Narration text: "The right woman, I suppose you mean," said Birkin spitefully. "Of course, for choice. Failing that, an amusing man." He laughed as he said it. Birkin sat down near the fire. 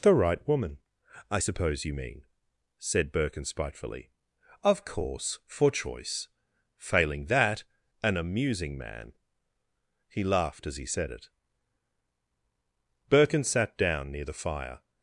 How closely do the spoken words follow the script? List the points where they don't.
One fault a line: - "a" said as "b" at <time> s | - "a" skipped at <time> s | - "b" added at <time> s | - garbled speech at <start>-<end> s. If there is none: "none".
none